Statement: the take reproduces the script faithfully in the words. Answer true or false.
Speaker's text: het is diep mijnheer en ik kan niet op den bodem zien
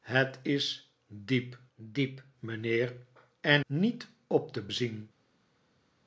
false